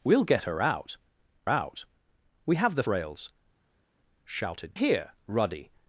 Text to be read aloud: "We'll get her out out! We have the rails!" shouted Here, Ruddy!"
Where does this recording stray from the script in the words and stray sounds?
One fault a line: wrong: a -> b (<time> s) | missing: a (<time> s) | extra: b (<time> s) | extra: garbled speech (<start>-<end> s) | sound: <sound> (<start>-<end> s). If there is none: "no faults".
no faults